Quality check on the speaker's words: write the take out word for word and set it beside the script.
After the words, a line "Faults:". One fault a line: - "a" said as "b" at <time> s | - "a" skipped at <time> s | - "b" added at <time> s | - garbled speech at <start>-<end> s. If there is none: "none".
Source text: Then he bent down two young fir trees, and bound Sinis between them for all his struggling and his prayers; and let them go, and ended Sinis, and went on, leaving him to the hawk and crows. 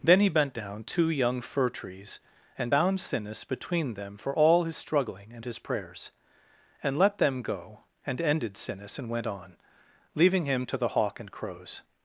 Then he bent down two young fir trees, and bound Sinis between them for all his struggling and his prayers; and let them go, and ended Sinis, and went on, leaving him to the hawk and crows.
Faults:
none